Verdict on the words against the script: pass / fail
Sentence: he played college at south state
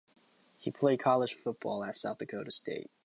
fail